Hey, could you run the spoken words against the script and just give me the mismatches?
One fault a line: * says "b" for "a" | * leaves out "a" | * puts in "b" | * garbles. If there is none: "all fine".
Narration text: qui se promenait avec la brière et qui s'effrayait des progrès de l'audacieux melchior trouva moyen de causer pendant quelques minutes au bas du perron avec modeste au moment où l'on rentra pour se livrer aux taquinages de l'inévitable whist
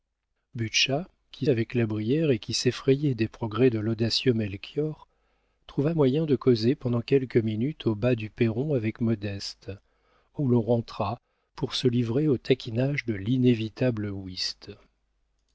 * leaves out "se promenait"
* leaves out "moment"